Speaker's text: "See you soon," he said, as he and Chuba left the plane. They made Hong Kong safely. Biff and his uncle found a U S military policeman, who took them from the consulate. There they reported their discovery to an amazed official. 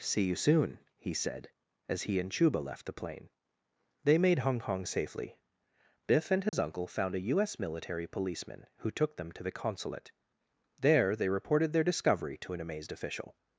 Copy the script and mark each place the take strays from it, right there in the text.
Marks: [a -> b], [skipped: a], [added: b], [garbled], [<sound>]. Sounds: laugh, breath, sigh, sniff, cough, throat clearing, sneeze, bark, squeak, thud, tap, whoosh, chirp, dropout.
"See you soon," he said, as he and Chuba left the plane. They made Hong Kong safely. Biff and his [dropout] uncle found a U S military policeman, who took them [from -> to] the consulate. There they reported their discovery to an amazed official.